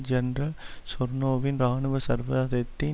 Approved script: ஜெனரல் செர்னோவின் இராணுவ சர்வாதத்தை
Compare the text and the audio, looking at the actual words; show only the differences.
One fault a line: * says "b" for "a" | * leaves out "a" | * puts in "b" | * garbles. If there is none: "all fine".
all fine